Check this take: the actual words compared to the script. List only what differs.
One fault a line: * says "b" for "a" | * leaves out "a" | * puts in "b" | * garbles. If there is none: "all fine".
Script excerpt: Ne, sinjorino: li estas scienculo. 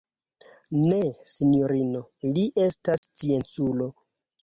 all fine